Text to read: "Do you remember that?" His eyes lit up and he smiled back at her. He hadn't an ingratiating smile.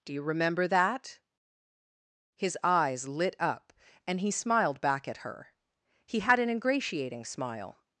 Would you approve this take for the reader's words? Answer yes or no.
no